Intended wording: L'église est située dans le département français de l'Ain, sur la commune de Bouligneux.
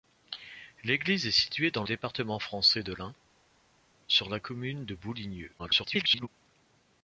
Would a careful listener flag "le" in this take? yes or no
yes